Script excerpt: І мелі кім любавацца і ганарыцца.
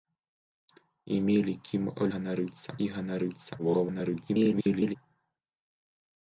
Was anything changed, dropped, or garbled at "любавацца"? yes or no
yes